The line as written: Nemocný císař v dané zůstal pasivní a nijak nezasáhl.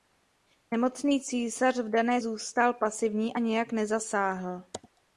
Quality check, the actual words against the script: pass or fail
pass